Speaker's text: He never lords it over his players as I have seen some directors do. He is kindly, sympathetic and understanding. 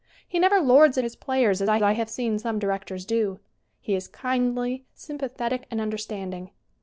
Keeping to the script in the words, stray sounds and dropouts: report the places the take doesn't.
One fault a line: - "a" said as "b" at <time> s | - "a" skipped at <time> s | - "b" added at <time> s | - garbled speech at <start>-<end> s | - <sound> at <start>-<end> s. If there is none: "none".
- "over" skipped at 1.1 s
- "I" added at 1.8 s